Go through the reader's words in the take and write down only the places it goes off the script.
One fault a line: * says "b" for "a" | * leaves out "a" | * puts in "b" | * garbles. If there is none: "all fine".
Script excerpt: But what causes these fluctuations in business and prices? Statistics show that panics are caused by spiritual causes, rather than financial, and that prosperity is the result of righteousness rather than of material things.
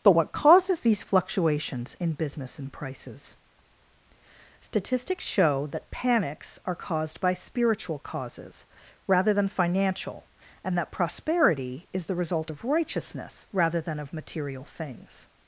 all fine